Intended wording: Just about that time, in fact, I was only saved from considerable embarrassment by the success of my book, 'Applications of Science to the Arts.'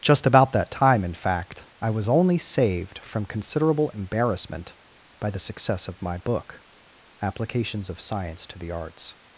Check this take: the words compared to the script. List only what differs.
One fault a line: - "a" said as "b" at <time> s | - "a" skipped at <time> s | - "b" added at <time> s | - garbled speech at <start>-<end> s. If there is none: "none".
none